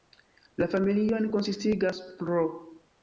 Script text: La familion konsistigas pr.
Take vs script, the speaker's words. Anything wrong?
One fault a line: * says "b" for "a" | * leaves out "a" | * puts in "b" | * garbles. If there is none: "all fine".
all fine